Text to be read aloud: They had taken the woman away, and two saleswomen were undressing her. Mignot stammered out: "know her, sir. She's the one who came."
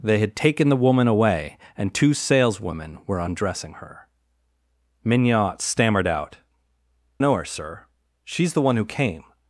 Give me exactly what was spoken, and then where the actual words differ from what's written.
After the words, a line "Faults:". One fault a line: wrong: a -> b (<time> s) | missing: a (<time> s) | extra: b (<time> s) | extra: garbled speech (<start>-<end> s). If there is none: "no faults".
They had taken the woman away, and two saleswomen were undressing her. Mignot stammered out: "know her, sir. She's the one who came."
Faults:
no faults